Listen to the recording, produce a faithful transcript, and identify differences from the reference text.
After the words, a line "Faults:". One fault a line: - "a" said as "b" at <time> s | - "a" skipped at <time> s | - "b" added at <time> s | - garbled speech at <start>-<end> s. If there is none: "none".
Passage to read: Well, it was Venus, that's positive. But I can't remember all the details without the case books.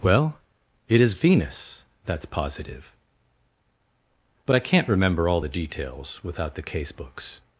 Well, it is Venus, that's positive. But I can't remember all the details without the case books.
Faults:
- "was" said as "is" at 1.0 s